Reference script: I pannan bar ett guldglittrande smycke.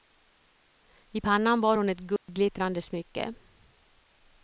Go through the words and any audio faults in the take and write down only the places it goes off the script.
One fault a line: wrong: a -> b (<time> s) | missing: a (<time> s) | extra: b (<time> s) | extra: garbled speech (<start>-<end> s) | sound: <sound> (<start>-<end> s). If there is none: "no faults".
extra: hon (1.8 s)
sound: dropout (2.2-2.3 s)